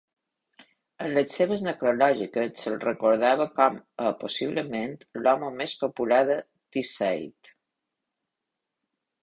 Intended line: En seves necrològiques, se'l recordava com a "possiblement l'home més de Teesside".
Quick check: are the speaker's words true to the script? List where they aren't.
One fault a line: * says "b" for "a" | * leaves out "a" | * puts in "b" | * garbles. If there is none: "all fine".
* puts in "les"
* puts in "popular"